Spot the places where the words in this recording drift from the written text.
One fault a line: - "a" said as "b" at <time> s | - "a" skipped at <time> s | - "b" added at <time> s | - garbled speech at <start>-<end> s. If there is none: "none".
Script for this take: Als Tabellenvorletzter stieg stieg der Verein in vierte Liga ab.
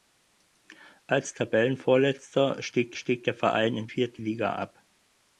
none